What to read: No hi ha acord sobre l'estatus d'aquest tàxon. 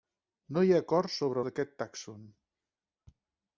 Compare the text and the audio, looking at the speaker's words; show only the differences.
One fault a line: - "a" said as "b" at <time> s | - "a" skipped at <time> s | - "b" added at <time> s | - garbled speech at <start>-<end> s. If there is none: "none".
- "l'estatus" skipped at 1.4 s